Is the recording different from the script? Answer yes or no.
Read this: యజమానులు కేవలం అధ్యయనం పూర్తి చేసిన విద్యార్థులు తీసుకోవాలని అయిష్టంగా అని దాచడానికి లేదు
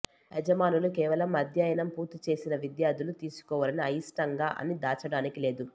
no